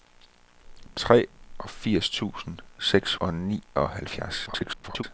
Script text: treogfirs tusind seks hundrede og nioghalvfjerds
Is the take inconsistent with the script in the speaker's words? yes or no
yes